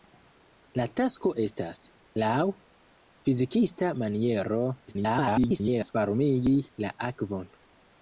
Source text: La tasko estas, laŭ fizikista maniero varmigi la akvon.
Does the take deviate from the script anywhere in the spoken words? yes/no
yes